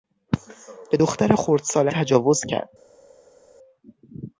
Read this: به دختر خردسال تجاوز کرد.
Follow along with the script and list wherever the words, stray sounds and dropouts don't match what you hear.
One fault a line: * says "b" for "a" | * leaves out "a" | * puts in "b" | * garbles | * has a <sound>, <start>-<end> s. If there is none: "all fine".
all fine